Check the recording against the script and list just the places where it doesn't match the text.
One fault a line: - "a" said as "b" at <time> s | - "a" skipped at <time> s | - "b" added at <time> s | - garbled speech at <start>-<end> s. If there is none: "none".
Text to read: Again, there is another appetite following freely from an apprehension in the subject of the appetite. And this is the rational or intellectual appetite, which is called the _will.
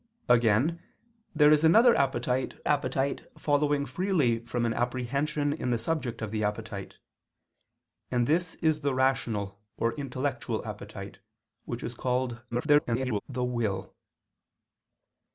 - "appetite" added at 2.6 s
- garbled speech at 12.5-13.2 s